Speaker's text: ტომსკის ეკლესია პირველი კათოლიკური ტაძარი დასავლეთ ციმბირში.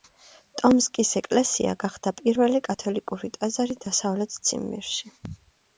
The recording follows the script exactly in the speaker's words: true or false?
false